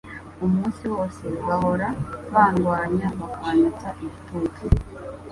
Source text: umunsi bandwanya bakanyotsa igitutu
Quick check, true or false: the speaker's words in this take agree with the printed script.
false